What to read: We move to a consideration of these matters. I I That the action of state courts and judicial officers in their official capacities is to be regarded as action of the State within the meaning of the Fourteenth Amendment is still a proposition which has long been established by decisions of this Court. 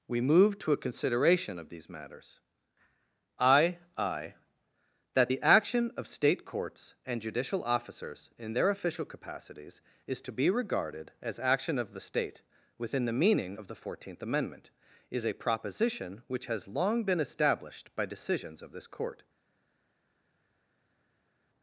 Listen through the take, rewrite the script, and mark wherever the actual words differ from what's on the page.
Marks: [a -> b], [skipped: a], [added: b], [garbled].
We move to a consideration of these matters. I I That the action of state courts and judicial officers in their official capacities is to be regarded as action of the State within the meaning of the Fourteenth Amendment is [skipped: still] a proposition which has long been established by decisions of this Court.